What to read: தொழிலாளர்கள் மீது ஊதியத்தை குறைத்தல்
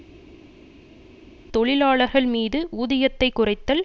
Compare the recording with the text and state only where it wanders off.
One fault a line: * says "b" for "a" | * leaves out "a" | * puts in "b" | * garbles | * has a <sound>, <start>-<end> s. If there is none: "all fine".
all fine